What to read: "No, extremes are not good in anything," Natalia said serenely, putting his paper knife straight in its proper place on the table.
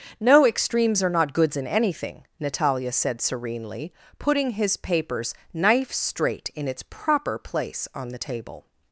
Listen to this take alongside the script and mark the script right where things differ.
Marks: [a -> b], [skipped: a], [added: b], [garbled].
"No, extremes are not [good -> goods] in anything," Natalia said serenely, putting his [paper -> papers] knife straight in its proper place on the table.